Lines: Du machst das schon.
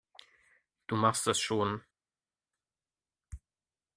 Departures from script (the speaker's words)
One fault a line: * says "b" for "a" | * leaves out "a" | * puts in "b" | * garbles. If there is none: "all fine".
all fine